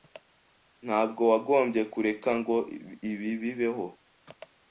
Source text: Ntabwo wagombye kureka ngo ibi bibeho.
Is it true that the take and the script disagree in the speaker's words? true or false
false